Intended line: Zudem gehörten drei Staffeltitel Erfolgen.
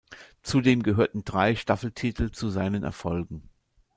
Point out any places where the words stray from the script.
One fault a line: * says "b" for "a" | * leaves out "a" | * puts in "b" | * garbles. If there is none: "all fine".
* puts in "zu seinen"